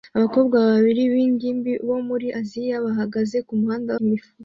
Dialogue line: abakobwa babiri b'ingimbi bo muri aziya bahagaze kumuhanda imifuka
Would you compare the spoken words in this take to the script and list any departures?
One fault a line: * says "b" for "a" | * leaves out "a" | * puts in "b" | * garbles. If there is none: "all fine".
all fine